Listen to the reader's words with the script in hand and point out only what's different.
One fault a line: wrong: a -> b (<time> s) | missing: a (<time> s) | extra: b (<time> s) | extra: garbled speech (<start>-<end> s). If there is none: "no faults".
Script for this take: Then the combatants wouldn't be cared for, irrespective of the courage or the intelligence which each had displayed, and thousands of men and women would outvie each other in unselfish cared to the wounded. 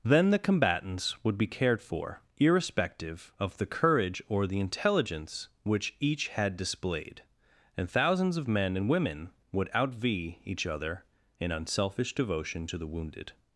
wrong: wouldn't -> would (1.2 s)
wrong: cared -> devotion (12.1 s)